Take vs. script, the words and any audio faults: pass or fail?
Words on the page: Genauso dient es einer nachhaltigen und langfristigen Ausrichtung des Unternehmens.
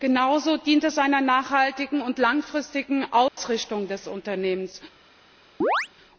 fail